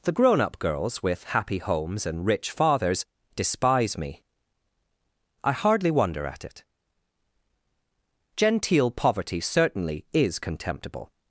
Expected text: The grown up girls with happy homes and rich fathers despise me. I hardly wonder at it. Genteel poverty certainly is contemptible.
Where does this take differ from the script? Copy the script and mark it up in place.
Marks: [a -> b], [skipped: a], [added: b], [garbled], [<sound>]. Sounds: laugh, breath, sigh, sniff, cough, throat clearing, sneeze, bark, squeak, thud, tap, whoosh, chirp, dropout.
The grown up girls with happy homes and rich fathers despise me. I hardly wonder at it. Genteel poverty certainly is contemptible.